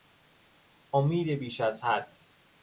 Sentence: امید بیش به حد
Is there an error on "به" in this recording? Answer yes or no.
yes